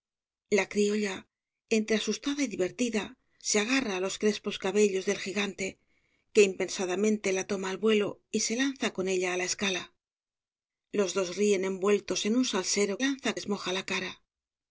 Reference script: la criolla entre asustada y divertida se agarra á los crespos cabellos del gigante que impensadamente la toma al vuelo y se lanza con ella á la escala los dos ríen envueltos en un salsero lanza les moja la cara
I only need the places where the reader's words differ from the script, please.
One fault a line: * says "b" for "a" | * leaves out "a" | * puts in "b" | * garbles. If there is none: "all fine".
all fine